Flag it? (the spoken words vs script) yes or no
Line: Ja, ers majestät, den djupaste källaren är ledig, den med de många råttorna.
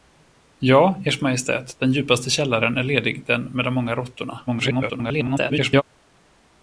yes